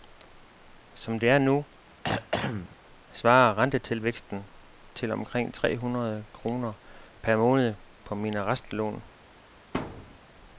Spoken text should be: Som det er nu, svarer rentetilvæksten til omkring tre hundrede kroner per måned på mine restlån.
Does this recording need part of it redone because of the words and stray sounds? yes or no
yes